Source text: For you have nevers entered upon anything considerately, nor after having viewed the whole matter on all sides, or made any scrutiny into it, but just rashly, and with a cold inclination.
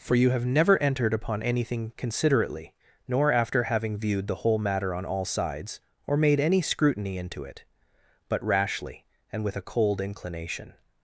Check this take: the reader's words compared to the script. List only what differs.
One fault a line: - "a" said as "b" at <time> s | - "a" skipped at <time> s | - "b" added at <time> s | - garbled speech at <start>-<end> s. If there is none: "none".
- "nevers" said as "never" at 0.5 s
- "just" skipped at 8.4 s